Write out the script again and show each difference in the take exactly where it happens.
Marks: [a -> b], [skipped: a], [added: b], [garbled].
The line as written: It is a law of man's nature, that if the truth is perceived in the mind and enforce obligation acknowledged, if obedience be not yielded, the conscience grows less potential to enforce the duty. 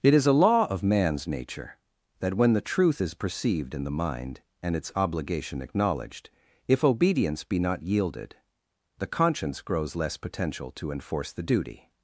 It is a law of man's nature, that [if -> when] the truth is perceived in the mind and [enforce -> its] obligation acknowledged, if obedience be not yielded, the conscience grows less potential to enforce the duty.